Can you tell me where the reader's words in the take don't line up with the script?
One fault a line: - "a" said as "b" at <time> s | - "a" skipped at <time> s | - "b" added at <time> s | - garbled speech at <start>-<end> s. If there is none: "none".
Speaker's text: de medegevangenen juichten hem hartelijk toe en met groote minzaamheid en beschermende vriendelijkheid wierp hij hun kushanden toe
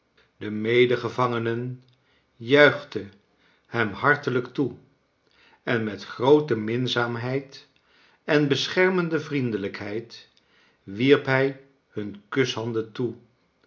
none